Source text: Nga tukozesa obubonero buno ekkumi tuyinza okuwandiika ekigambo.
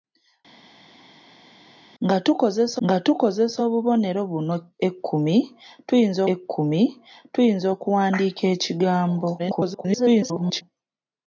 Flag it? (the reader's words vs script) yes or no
yes